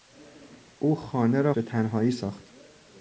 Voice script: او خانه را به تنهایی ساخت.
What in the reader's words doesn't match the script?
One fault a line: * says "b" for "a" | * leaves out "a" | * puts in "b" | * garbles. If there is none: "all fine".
all fine